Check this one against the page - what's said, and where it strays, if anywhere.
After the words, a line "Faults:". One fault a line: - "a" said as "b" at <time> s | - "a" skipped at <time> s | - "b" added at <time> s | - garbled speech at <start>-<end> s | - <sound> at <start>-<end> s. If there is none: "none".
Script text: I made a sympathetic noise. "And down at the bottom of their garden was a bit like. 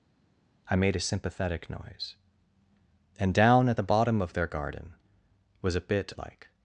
I made a sympathetic noise. "And down at the bottom of their garden was a bit like.
Faults:
none